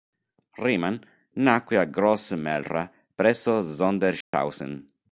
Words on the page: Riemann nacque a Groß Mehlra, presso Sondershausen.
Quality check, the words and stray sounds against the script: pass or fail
fail